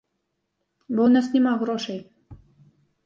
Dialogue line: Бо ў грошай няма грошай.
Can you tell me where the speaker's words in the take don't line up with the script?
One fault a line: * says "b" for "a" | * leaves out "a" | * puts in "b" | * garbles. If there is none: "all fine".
* says "нас" for "грошай"